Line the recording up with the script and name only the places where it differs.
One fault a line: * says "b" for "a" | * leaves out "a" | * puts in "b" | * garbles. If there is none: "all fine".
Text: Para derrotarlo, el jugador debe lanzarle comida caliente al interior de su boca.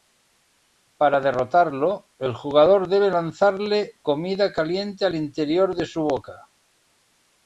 all fine